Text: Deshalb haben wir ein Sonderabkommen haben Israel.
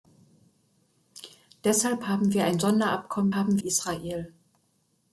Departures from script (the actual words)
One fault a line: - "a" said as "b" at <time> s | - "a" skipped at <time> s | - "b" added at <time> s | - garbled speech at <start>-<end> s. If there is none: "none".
none